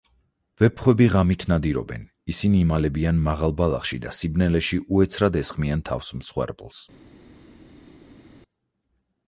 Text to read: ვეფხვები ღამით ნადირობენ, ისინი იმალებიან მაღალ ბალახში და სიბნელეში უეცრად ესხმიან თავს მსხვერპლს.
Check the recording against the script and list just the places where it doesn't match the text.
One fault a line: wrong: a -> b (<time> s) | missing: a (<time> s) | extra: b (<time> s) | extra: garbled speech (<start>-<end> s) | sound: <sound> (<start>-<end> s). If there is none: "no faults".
no faults